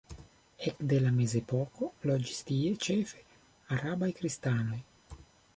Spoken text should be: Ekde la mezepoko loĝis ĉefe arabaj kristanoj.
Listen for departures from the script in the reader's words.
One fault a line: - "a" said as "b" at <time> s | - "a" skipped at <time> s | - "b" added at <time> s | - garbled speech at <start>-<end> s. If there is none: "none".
- "tie" added at 2.5 s